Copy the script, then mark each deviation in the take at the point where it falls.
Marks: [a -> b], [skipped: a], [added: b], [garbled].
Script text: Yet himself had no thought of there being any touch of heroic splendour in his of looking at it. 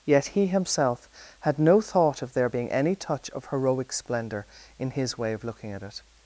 Yet [added: he] himself had no thought of there being any touch of heroic splendour in his [added: way] of looking at it.